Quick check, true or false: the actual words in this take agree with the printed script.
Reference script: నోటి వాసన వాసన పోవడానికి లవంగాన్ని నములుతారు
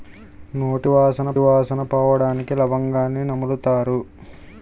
true